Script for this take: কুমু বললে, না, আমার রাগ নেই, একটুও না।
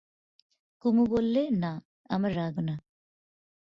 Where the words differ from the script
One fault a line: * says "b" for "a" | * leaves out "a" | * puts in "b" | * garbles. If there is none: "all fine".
* leaves out "নেই একটুও"